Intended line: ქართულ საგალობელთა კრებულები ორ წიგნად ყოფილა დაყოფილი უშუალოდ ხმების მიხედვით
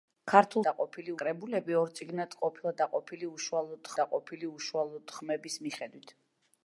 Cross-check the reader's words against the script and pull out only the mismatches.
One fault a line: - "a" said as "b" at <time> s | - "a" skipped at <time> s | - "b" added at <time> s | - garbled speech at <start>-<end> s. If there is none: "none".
- "საგალობელთა" said as "დაყოფილი" at 0.7 s
- "დაყოფილი უშუალოდ" added at 4.0 s